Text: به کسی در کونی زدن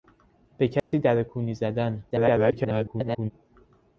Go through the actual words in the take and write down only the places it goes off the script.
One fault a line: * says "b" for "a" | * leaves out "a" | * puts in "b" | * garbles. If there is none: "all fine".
* garbles